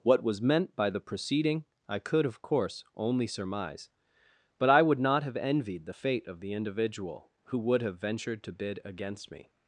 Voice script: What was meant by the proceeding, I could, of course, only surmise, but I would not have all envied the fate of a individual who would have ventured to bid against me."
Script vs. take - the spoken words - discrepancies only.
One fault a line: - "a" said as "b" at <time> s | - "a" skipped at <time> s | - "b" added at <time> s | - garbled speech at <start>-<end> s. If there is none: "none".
- "all" skipped at 5.4 s
- "a" said as "the" at 6.4 s